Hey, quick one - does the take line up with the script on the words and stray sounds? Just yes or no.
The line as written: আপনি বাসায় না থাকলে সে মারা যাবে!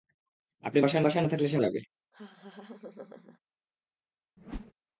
no